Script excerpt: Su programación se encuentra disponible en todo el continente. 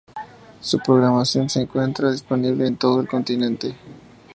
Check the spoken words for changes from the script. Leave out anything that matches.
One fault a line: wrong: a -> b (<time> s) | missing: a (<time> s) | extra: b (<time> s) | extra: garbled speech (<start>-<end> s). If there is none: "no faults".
no faults